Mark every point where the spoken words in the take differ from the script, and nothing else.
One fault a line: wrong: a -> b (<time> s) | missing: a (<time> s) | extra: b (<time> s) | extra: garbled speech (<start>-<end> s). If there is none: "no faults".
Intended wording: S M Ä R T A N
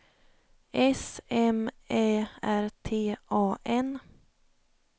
no faults